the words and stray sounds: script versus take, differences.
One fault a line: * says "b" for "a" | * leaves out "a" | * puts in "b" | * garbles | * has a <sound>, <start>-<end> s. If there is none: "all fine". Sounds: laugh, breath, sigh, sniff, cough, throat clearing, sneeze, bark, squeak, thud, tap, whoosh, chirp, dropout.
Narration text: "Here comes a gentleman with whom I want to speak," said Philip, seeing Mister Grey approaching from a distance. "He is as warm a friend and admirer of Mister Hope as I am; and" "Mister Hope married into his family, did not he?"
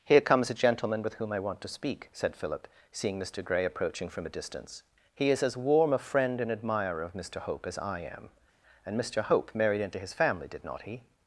all fine